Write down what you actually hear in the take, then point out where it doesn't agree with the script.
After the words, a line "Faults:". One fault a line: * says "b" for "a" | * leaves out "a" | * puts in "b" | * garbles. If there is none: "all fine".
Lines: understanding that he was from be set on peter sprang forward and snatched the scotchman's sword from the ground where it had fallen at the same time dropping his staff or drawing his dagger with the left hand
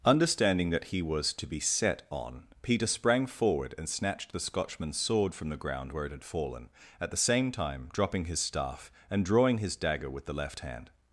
understanding that he was to be set on peter sprang forward and snatched the scotchman's sword from the ground where it had fallen at the same time dropping his staff and drawing his dagger with the left hand
Faults:
* says "to" for "from"
* says "and" for "or"